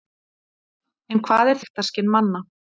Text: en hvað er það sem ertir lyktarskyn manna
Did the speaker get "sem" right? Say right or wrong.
wrong